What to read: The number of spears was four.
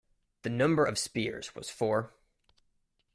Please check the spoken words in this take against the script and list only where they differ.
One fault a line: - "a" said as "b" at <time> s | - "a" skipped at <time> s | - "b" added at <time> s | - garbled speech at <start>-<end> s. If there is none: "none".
none